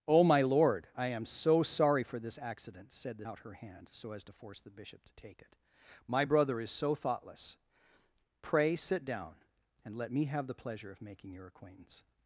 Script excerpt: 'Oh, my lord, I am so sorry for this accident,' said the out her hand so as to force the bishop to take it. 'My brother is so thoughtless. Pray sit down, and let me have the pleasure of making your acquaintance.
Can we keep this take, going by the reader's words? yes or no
yes